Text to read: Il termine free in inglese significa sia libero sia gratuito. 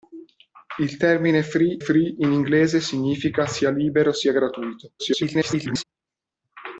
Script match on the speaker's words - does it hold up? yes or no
no